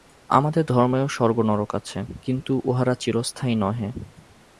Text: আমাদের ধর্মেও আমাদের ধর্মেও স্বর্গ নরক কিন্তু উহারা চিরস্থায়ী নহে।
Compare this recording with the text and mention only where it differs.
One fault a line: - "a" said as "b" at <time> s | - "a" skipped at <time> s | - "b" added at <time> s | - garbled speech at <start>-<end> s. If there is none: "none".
- "আমাদের ধর্মেও" skipped at 1.1 s
- "আছে" added at 1.7 s